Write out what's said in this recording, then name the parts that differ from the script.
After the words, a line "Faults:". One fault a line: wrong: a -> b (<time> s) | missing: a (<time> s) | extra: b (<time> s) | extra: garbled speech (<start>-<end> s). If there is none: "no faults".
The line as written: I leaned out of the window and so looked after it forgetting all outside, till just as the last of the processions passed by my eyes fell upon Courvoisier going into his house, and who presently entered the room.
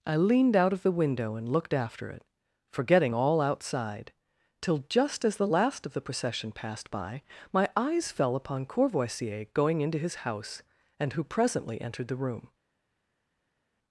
I leaned out of the window and looked after it forgetting all outside, till just as the last of the procession passed by my eyes fell upon Courvoisier going into his house, and who presently entered the room.
Faults:
missing: so (1.5 s)
wrong: processions -> procession (6.0 s)